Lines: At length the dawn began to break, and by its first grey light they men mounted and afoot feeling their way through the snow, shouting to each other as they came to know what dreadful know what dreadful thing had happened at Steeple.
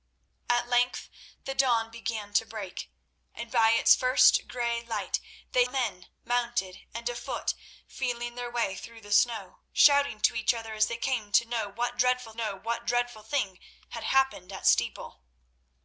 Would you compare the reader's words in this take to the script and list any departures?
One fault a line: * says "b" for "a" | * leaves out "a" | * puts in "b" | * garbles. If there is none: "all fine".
all fine